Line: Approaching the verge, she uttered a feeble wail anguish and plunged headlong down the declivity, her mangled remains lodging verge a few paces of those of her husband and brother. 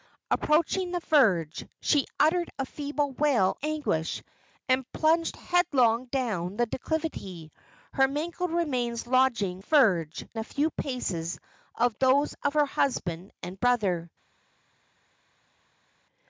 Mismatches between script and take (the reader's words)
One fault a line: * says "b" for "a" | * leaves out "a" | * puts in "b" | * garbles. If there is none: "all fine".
all fine